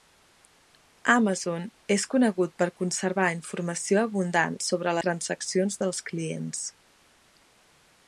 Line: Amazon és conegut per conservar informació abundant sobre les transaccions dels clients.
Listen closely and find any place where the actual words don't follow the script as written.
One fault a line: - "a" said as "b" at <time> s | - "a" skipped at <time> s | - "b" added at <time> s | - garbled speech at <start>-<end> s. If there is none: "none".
- "les" skipped at 5.0 s